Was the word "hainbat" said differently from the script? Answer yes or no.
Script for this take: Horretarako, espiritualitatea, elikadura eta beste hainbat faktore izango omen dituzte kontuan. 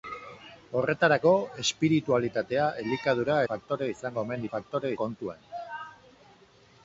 yes